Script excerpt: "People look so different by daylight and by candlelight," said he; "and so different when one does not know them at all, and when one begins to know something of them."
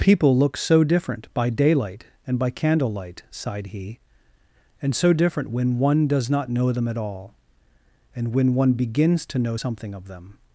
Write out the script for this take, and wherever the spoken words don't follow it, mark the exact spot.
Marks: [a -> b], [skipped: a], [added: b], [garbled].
"People look so different by daylight and by candlelight," [said -> sighed] he; "and so different when one does not know them at all, and when one begins to know something of them."